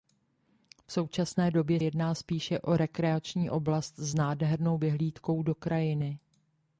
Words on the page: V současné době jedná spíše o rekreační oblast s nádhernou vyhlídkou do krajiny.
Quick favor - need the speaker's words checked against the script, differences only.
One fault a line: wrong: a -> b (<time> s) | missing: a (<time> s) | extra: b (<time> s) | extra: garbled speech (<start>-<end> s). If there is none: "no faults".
no faults